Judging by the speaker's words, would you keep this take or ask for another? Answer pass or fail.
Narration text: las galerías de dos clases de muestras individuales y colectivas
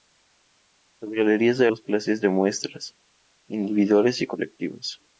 pass